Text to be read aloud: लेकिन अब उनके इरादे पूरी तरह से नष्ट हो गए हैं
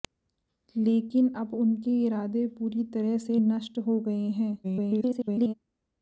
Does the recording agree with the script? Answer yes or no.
no